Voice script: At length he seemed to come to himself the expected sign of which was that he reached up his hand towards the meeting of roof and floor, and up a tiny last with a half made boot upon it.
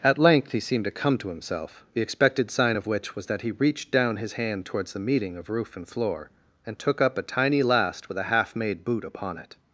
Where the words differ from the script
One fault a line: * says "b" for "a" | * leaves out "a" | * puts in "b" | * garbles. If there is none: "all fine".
* says "down" for "up"
* puts in "took"